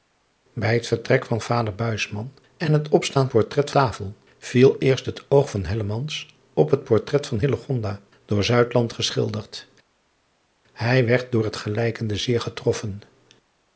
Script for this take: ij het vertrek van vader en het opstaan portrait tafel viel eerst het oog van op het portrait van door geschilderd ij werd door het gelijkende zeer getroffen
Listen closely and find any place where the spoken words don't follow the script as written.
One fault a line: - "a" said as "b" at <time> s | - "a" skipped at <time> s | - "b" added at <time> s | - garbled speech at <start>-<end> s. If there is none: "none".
none